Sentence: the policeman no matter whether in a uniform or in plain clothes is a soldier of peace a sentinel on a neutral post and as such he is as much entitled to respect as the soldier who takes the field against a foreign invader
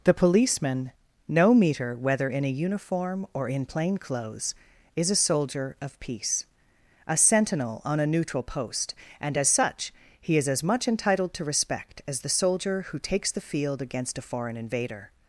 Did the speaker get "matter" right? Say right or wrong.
wrong